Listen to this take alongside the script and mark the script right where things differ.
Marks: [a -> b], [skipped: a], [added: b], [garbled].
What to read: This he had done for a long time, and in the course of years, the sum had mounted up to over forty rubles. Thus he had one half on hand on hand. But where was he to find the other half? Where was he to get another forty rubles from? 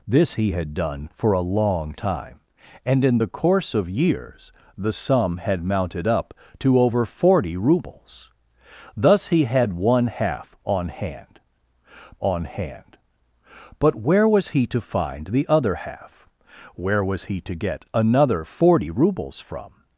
This he had done for a long time, and in the course of years, the sum had mounted up to over forty rubles. Thus he had one half on hand on hand. But where was he to find the other half? Where was he to get another forty rubles from?